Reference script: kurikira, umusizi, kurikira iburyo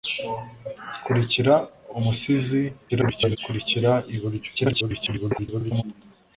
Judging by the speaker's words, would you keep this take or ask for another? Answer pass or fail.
fail